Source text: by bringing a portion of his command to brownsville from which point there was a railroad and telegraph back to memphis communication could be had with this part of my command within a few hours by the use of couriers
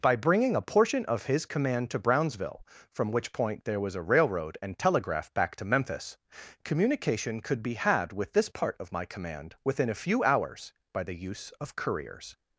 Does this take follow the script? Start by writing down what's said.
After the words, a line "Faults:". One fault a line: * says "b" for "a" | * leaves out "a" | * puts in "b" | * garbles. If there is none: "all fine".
by bringing a portion of his command to brownsville from which point there was a railroad and telegraph back to memphis communication could be had with this part of my command within a few hours by the use of couriers
Faults:
all fine